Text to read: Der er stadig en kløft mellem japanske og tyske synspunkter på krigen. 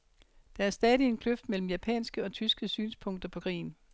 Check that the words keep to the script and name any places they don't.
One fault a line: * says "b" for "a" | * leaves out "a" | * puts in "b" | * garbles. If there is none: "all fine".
all fine